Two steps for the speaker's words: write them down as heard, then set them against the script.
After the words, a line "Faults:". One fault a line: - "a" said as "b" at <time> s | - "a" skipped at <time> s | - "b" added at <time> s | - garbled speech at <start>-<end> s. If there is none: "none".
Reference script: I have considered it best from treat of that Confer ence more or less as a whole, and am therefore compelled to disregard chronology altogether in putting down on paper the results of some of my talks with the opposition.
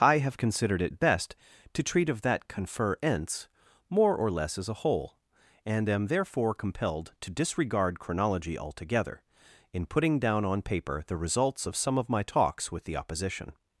I have considered it best to treat of that Confer ence more or less as a whole, and am therefore compelled to disregard chronology altogether in putting down on paper the results of some of my talks with the opposition.
Faults:
- "from" said as "to" at 1.7 s